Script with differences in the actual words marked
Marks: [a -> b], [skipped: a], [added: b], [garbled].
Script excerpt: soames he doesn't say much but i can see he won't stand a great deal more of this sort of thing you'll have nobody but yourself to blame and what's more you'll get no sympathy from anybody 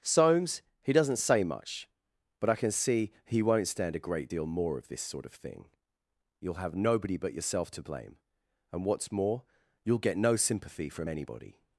soames he doesn't say much but i can see he won't stand a great deal more of this sort of thing you'll have nobody but yourself to blame and what's more you'll get no sympathy from anybody